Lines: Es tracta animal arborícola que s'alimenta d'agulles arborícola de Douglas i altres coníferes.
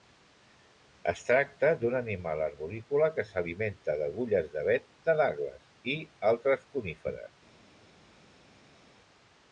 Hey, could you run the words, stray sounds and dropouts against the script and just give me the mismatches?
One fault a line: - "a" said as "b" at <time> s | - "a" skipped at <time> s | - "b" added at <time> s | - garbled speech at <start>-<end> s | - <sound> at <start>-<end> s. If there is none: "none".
- "d'un" added at 1.8 s
- "arborícola" said as "d'avet" at 4.6 s